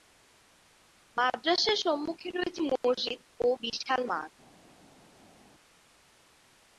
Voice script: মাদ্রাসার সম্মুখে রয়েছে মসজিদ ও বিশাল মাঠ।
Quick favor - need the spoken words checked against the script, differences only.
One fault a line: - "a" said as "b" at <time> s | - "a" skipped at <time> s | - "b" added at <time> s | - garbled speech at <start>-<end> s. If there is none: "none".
none